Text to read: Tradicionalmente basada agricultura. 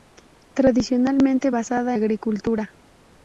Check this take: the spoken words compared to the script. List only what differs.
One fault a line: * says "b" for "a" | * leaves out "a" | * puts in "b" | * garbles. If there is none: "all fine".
all fine